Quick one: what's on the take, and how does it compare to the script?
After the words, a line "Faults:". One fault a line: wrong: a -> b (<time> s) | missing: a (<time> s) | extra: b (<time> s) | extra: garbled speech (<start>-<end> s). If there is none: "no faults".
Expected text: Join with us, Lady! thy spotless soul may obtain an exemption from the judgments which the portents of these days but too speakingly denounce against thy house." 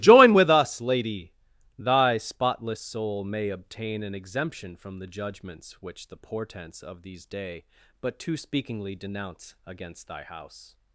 Join with us, Lady! thy spotless soul may obtain an exemption from the judgments which the portents of these day but too speakingly denounce against thy house."
Faults:
wrong: days -> day (7.3 s)